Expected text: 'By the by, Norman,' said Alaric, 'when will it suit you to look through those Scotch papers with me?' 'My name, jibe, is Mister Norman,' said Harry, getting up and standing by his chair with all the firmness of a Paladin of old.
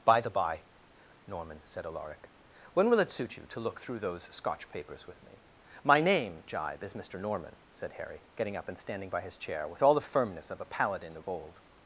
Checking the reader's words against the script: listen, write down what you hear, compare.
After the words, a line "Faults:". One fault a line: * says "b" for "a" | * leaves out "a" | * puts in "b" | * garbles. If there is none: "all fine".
'By the by, Norman,' said Alaric, 'when will it suit you to look through those Scotch papers with me?' 'My name, jibe, is Mister Norman,' said Harry, getting up and standing by his chair with all the firmness of a Paladin of old.
Faults:
all fine